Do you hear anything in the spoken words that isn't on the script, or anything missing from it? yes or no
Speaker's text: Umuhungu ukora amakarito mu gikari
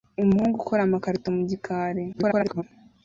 yes